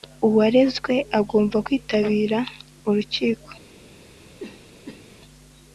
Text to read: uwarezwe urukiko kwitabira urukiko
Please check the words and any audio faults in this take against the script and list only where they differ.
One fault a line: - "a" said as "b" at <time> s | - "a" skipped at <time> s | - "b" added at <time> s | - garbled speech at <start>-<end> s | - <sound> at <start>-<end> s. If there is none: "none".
- "urukiko" said as "agomba" at 1.2 s
- cough at 4.4-5.2 s